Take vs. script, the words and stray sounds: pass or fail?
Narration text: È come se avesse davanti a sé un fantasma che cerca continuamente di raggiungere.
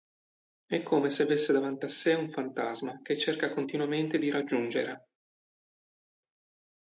pass